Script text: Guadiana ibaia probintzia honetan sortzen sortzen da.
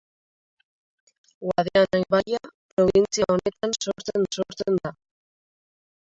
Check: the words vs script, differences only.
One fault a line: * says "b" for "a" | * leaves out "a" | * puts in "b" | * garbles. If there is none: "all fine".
all fine